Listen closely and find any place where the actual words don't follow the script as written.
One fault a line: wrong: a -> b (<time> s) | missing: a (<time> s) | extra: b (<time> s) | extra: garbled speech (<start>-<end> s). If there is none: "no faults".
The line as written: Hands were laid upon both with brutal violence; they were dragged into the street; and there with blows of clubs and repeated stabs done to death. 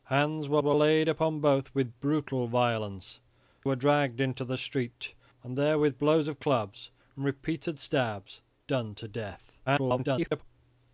extra: were (0.6 s)
missing: they (3.2 s)
extra: garbled speech (9.7-10.4 s)